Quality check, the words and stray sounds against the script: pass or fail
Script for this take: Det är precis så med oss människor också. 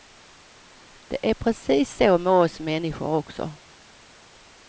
pass